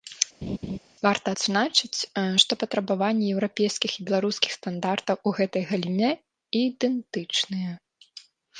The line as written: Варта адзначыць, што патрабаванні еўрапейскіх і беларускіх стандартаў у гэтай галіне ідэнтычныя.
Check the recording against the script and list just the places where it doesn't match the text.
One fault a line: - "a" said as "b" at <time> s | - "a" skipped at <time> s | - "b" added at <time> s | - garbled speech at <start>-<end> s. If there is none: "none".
none